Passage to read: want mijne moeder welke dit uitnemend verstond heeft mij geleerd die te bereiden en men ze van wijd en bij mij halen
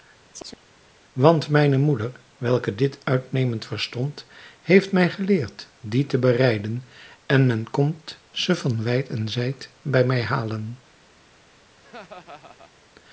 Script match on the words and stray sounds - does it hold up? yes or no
no